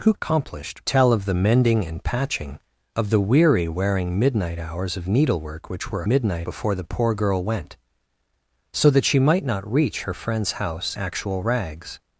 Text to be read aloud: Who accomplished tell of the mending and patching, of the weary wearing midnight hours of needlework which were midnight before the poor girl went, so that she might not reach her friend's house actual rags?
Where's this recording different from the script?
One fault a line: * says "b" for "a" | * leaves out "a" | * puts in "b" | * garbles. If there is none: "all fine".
all fine